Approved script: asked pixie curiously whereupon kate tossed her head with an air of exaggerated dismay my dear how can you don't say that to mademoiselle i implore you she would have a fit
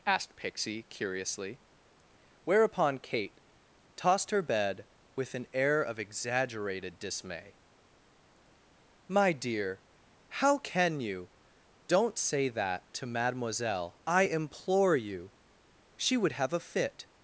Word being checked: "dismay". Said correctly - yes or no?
yes